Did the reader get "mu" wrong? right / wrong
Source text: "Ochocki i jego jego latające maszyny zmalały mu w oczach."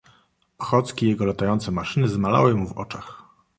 right